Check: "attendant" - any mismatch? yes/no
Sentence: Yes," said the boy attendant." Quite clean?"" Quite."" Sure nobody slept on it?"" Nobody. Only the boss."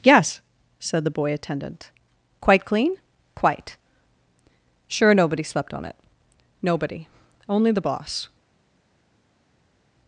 no